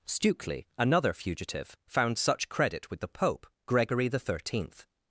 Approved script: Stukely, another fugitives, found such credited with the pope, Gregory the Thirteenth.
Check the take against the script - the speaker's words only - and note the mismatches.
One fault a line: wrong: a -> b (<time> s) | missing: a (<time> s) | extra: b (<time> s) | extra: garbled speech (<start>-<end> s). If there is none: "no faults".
wrong: fugitives -> fugitive (1.1 s)
wrong: credited -> credit (2.5 s)